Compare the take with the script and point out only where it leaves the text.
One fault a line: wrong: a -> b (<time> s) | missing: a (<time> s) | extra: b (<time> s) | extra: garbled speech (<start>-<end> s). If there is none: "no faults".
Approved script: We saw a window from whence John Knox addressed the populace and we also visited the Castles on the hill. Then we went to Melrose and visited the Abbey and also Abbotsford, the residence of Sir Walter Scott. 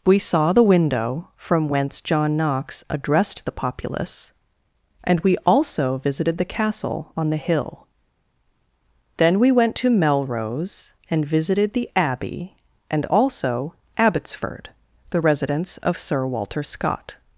wrong: a -> the (0.5 s)
wrong: Castles -> Castle (6.4 s)